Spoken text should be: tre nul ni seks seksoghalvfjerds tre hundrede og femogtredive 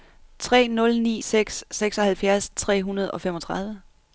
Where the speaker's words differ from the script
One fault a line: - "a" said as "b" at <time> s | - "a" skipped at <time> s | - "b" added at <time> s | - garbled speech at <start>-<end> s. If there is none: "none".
none